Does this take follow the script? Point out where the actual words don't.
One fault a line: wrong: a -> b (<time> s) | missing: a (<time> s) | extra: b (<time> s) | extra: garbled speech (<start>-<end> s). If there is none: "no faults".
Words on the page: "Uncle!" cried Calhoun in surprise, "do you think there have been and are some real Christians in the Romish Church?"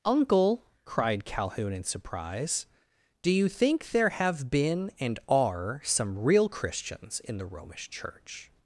no faults